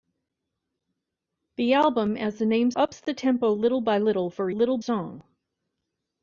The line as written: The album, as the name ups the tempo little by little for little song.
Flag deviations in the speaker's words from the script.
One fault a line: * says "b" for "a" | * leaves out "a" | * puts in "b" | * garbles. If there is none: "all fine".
all fine